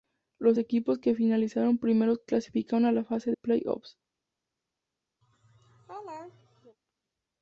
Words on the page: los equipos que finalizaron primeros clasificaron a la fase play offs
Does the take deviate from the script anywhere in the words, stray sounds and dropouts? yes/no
yes